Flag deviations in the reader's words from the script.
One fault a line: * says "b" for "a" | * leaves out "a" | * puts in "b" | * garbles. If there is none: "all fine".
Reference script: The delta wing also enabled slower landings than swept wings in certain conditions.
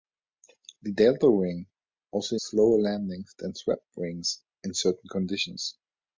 * leaves out "enabled"